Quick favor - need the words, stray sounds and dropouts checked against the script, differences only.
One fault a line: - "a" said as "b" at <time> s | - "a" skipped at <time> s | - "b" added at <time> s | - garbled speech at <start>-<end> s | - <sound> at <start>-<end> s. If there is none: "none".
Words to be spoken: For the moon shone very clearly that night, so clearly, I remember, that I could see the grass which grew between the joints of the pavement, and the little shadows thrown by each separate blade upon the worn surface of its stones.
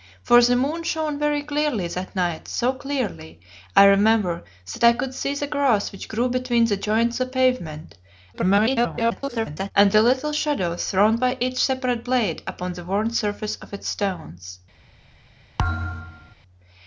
- "of" skipped at 7.2 s
- garbled speech at 8.3-9.7 s
- thud at 15.6-16.4 s